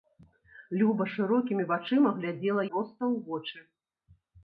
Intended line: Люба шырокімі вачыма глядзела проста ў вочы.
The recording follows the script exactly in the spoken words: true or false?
true